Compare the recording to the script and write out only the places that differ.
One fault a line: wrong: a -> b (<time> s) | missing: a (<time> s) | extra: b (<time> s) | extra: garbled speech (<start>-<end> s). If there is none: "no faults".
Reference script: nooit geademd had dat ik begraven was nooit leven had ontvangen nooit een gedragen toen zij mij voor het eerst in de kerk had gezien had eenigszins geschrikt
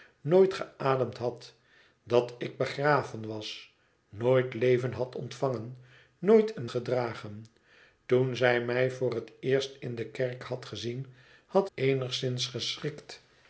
no faults